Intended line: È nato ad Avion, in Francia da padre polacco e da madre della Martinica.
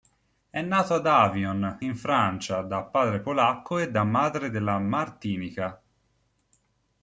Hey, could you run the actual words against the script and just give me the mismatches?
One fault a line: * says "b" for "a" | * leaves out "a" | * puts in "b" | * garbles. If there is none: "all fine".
all fine